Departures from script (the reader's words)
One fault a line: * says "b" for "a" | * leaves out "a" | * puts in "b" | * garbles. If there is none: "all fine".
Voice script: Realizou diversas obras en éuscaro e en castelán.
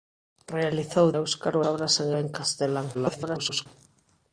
* says "éuscaro" for "diversas"
* leaves out "éuscaro"
* garbles